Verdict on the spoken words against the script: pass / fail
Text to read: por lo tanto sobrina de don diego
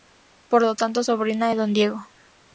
pass